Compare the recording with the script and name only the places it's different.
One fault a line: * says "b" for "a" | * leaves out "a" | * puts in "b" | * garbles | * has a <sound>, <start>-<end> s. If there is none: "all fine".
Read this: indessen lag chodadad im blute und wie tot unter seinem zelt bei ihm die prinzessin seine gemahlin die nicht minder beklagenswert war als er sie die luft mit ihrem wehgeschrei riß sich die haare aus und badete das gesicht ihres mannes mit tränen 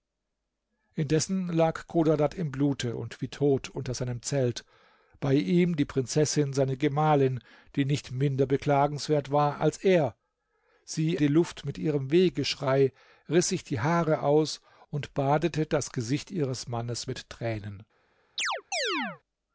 * has a chirp, 18.4-19.2 s